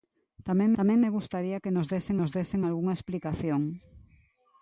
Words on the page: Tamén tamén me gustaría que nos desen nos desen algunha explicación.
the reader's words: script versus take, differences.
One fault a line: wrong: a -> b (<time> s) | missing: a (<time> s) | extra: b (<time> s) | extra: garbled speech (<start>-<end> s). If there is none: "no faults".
no faults